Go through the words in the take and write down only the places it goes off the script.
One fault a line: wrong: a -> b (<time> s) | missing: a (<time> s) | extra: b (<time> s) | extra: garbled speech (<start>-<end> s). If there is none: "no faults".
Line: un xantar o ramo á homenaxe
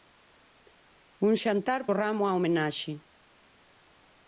no faults